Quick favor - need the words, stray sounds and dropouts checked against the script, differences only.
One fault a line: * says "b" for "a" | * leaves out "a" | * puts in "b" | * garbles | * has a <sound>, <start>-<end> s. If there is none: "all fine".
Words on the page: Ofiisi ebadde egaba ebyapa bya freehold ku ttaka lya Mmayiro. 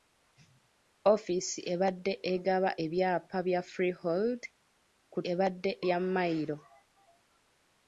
* says "ebadde" for "ttaka"